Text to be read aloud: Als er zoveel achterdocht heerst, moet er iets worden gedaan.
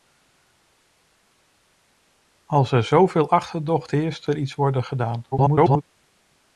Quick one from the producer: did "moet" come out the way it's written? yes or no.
no